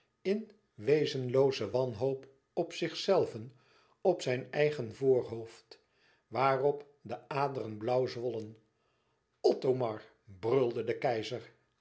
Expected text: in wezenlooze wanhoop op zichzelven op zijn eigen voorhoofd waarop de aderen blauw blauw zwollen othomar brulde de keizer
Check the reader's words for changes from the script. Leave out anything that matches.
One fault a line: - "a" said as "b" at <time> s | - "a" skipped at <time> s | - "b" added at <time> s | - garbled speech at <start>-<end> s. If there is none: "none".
- "blauw" skipped at 8.1 s